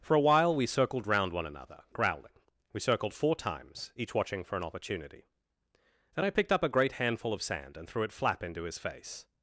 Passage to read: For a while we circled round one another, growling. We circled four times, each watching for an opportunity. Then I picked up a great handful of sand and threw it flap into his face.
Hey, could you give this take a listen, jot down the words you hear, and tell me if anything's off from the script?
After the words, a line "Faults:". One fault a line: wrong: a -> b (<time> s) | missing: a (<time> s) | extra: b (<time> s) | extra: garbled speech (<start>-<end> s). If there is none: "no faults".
For a while we circled round one another, growling. We circled four times, each watching for an opportunity. Then I picked up a great handful of sand and threw it flap into his face.
Faults:
no faults